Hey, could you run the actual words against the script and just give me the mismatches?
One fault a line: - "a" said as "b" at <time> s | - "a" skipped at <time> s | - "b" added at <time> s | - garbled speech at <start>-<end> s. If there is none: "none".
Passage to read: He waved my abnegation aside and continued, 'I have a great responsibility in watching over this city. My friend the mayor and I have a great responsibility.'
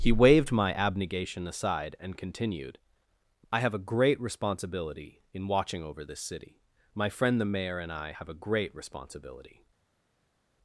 none